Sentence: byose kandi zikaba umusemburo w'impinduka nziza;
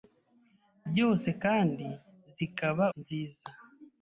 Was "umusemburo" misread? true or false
true